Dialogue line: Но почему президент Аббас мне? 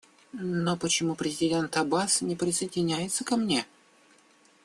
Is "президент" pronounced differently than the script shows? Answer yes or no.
no